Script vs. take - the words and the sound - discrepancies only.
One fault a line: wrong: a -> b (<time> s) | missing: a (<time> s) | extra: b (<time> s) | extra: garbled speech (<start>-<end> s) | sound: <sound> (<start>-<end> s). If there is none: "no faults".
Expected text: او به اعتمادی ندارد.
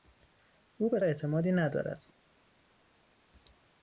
no faults